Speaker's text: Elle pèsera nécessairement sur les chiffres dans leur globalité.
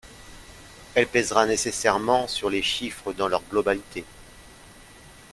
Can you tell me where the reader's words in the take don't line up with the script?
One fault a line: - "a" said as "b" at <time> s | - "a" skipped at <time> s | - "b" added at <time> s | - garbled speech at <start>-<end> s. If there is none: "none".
none